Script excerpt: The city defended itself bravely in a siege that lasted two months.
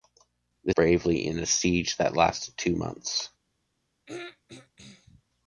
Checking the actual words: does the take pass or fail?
fail